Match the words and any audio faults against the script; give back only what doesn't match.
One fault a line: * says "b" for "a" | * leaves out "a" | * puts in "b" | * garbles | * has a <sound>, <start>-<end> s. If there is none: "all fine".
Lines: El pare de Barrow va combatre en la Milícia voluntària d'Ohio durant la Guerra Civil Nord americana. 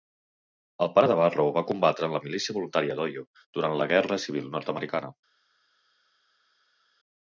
all fine